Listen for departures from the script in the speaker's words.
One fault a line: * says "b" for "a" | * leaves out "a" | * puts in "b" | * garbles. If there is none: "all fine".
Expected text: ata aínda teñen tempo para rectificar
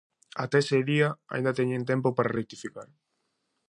* puts in "ese día"